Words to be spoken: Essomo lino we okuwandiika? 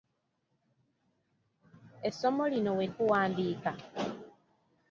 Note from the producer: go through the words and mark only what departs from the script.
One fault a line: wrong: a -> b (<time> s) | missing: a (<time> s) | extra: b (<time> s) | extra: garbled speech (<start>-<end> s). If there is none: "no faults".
no faults